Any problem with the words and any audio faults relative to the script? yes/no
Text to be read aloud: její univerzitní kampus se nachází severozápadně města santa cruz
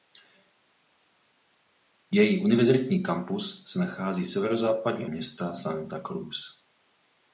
no